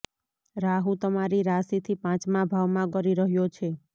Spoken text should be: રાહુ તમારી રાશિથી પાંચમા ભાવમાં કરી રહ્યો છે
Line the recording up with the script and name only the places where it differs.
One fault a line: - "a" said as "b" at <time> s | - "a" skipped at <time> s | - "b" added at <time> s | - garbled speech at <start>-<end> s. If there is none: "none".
none